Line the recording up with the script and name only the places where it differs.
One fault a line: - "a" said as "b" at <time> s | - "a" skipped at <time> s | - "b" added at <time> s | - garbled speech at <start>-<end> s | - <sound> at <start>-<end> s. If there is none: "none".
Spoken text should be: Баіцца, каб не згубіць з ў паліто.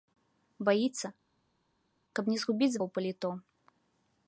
none